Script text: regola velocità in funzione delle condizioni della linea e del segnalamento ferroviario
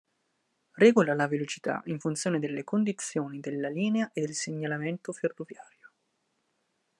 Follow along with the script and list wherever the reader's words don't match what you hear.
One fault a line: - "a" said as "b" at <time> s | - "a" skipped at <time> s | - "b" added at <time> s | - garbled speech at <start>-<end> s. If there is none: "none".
- "la" added at 1.1 s